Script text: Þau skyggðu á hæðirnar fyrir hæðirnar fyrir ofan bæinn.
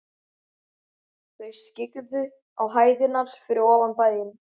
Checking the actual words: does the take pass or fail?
fail